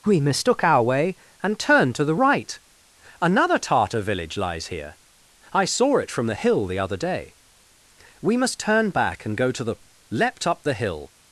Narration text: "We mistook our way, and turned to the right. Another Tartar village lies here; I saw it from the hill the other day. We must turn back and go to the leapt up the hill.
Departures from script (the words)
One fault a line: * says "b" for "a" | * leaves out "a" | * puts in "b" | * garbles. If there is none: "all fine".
all fine